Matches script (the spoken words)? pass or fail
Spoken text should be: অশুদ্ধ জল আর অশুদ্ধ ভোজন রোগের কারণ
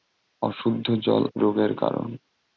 fail